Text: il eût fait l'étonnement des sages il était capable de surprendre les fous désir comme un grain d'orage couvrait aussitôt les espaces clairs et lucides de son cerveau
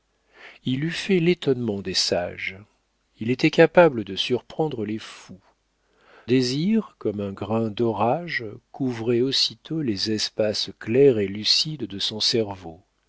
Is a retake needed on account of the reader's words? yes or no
no